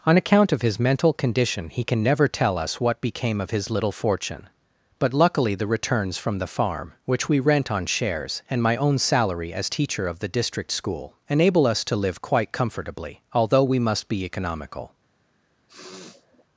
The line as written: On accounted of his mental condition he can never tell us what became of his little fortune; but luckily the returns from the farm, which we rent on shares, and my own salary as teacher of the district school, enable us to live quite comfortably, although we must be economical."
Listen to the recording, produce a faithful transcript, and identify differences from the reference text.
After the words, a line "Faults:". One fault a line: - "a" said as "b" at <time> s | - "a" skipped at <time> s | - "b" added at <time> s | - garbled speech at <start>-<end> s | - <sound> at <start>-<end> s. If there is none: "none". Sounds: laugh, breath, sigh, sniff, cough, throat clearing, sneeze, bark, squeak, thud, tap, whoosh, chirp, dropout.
On account of his mental condition he can never tell us what became of his little fortune; but luckily the returns from the farm, which we rent on shares, and my own salary as teacher of the district school, enable us to live quite comfortably, although we must be economical."
Faults:
- "accounted" said as "account" at 0.2 s
- sniff at 15.7-16.4 s